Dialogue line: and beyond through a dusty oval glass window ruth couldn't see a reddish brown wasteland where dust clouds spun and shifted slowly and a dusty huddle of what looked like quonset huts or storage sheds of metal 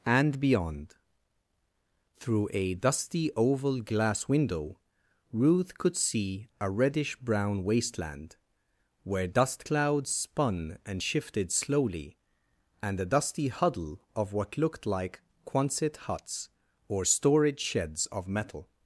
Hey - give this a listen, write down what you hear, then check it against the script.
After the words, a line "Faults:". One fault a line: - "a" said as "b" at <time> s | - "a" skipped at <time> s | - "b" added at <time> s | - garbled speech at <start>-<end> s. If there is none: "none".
and beyond through a dusty oval glass window ruth could see a reddish brown wasteland where dust clouds spun and shifted slowly and a dusty huddle of what looked like quonset huts or storage sheds of metal
Faults:
- "couldn't" said as "could" at 5.8 s